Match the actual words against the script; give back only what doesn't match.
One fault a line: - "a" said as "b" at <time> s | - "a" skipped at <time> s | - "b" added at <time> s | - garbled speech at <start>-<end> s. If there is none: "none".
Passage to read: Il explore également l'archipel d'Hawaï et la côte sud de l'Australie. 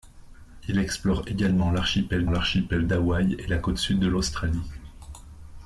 - "l'archipel" added at 2.3 s